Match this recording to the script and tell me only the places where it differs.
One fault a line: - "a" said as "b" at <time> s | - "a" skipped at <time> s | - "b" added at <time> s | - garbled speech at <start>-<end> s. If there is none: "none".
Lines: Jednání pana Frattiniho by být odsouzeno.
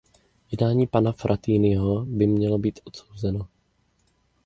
- "mělo" added at 2.3 s